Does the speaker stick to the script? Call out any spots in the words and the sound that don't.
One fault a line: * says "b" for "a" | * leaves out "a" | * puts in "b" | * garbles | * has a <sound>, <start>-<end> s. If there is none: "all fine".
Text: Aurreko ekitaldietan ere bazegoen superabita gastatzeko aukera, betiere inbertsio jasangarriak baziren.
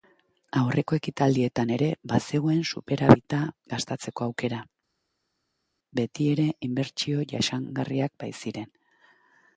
all fine